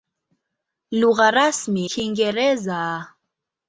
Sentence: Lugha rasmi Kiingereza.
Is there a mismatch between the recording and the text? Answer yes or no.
no